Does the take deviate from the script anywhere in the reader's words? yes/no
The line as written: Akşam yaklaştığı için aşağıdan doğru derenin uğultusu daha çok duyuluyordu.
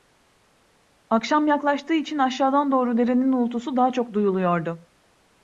no